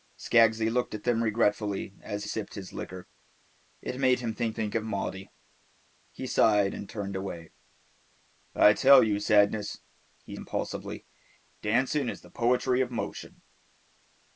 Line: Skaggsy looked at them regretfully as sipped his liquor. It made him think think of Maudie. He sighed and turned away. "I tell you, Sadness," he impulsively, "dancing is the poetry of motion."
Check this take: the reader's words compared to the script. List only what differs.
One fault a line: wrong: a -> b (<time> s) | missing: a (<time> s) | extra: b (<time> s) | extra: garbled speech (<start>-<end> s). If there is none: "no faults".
no faults